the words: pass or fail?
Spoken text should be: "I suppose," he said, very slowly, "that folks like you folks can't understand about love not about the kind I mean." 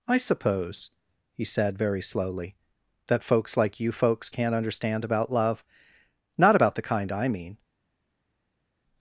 pass